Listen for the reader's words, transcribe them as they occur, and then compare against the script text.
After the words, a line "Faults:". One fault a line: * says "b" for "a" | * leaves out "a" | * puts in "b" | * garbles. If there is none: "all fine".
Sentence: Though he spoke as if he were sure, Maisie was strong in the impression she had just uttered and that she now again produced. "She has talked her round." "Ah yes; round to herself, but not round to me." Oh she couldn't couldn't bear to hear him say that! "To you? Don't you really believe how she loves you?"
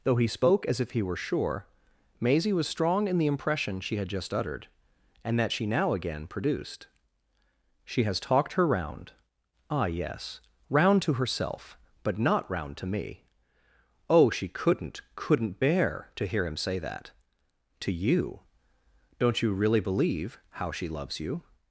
Though he spoke as if he were sure, Maisie was strong in the impression she had just uttered and that she now again produced. "She has talked her round." "Ah yes; round to herself, but not round to me." Oh she couldn't couldn't bear to hear him say that! "To you? Don't you really believe how she loves you?"
Faults:
all fine